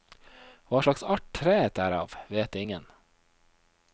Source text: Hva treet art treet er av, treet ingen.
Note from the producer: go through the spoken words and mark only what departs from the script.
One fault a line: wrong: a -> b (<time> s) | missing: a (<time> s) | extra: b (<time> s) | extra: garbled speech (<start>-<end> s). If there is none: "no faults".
wrong: treet -> slags (0.8 s)
wrong: treet -> vet (2.3 s)